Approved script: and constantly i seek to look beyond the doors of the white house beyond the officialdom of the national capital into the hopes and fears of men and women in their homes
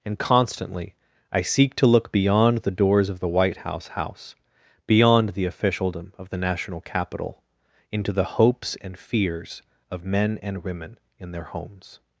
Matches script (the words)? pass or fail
fail